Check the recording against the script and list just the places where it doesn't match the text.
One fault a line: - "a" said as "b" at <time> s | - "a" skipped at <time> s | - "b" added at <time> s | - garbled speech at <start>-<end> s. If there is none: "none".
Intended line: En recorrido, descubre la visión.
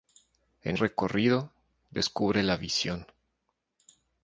none